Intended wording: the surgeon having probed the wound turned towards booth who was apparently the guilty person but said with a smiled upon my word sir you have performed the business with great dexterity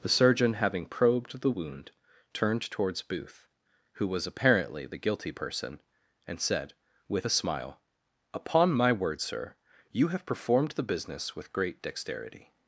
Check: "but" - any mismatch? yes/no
yes